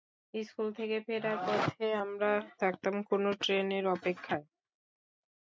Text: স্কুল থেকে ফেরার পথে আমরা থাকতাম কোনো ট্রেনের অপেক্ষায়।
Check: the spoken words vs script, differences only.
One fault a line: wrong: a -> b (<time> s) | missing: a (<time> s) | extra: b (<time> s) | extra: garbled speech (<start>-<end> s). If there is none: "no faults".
no faults